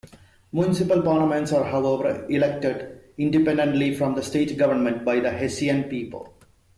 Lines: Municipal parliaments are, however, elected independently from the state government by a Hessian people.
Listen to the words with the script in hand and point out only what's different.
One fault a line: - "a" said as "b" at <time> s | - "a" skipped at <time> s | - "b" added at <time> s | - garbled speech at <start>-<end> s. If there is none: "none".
- "a" said as "the" at 5.2 s